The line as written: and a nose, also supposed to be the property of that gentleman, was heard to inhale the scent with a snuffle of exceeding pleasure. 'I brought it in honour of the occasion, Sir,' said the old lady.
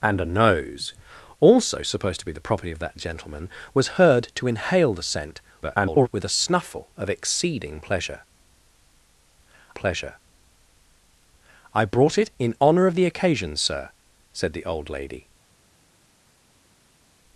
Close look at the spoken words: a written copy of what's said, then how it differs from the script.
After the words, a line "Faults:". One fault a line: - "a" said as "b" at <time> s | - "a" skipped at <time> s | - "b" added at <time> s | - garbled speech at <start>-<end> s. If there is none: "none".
and a nose, also supposed to be the property of that gentleman, was heard to inhale the scent [garbled] with a snuffle of exceeding pleasure pleasure. 'I brought it in honour of the occasion, Sir,' said the old lady.
Faults:
- garbled speech at 5.6-6.1 s
- "pleasure" added at 9.7 s